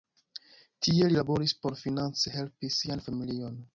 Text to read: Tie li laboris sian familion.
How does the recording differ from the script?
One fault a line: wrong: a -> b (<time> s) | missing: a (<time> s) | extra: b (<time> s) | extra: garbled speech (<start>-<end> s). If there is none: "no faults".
extra: por finance helpi (1.7 s)